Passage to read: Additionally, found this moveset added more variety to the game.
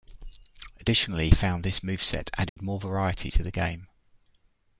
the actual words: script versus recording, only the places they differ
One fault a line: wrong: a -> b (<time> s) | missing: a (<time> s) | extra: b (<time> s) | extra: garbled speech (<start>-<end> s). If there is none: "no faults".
no faults